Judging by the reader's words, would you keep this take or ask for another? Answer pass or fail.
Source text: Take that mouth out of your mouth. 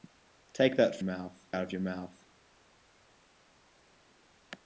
pass